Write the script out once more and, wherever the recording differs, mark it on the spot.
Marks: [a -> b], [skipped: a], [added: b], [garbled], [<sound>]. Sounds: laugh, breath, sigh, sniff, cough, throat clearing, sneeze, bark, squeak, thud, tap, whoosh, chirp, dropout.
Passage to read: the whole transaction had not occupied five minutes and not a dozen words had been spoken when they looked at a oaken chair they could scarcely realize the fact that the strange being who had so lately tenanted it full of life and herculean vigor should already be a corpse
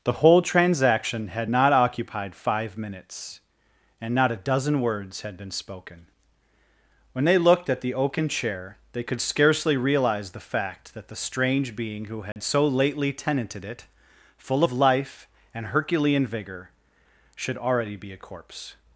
the whole transaction had not occupied five minutes and not a dozen words had been spoken when they looked at [a -> the] oaken chair they could scarcely realize the fact that the strange being who had [dropout] so lately tenanted it full of life and herculean vigor should already be a corpse